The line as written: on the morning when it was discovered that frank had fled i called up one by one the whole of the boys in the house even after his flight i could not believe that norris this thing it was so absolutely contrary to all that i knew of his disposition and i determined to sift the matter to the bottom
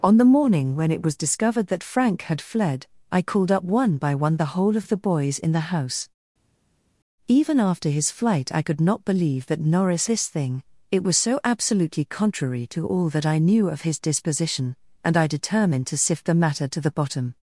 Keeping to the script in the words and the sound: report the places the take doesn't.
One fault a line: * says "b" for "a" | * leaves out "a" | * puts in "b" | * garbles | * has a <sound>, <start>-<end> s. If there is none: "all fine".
all fine